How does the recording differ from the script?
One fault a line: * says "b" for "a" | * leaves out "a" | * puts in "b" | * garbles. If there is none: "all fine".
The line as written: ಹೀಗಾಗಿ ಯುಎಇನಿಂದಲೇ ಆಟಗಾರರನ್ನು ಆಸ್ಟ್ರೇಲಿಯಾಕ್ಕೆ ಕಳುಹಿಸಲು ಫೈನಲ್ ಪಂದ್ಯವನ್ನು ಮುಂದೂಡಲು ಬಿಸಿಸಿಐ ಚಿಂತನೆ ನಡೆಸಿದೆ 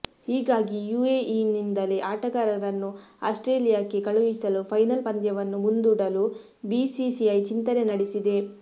all fine